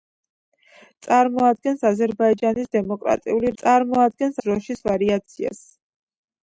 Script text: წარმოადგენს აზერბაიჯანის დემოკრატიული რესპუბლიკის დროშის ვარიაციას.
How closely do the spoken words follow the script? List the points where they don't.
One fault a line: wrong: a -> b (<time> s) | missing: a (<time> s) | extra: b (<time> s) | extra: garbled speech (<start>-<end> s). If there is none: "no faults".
wrong: რესპუბლიკის -> წარმოადგენს (3.6 s)